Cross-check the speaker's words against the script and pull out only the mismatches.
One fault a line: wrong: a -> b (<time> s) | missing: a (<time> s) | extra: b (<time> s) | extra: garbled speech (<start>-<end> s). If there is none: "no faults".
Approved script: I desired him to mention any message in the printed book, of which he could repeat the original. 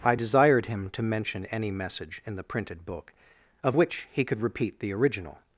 no faults